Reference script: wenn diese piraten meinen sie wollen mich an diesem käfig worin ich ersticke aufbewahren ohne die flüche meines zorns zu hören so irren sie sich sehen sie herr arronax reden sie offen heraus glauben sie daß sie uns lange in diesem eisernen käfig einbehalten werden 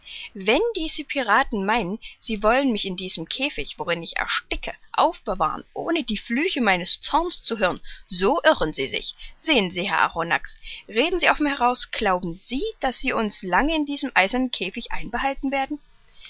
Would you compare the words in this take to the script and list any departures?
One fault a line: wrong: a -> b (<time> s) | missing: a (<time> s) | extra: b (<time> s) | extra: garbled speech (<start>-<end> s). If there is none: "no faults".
wrong: an -> in (2.9 s)